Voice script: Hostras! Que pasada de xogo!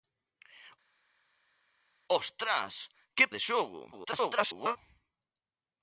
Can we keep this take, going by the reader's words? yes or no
no